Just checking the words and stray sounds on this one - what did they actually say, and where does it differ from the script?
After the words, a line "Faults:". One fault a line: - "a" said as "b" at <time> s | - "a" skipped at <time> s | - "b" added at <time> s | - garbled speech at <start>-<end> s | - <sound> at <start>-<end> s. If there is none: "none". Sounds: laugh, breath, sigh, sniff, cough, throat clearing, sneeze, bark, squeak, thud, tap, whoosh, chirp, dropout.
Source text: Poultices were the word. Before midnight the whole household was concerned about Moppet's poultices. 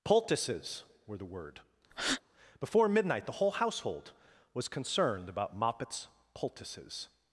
Poultices were the word. Before midnight the whole household was concerned about Moppet's poultices.
Faults:
- breath at 1.9-2.2 s